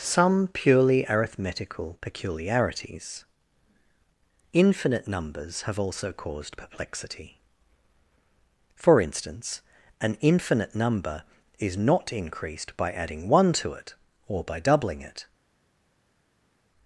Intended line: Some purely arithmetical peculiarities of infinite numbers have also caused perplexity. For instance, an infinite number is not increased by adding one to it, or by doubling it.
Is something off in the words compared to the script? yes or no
yes